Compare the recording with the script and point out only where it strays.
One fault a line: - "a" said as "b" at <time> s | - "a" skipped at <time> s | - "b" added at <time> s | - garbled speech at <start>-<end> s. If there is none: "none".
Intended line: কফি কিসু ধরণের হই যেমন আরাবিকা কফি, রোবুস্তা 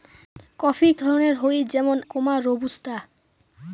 - "কিসু" skipped at 0.9 s
- "আরাবিকা কফি" skipped at 2.0 s